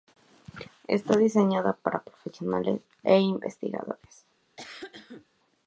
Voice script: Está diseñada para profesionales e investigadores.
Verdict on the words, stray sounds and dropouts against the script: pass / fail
fail